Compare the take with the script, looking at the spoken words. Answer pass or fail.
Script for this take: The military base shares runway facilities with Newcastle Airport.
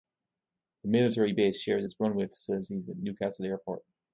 fail